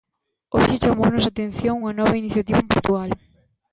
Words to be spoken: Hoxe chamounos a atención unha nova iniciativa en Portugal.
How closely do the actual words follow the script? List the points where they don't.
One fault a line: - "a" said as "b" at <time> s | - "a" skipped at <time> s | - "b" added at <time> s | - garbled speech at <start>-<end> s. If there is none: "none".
none